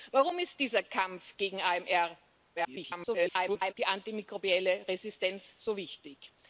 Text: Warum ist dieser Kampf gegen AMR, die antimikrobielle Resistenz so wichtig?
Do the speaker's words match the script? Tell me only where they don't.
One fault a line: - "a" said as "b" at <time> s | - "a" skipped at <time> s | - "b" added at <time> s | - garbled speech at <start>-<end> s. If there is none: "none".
- garbled speech at 2.6-3.7 s